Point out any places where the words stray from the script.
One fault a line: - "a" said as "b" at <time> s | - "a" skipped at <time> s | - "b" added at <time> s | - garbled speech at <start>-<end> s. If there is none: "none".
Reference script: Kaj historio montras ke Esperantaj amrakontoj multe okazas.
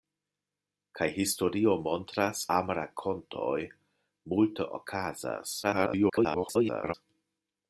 - "ke Esperantaj" skipped at 2.4 s
- garbled speech at 5.6-6.9 s